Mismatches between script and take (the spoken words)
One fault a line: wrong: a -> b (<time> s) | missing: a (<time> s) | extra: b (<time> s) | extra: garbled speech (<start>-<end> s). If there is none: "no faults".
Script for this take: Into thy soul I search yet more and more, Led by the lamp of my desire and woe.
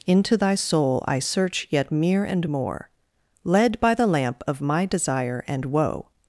wrong: more -> mere (1.9 s)